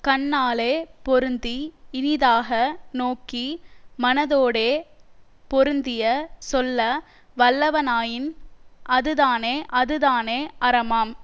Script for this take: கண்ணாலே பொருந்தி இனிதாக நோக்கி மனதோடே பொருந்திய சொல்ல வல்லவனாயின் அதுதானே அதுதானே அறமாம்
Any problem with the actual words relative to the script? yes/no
no